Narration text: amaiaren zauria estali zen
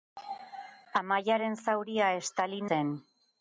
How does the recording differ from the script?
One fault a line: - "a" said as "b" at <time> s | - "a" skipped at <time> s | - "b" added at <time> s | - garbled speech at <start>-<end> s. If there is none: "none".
none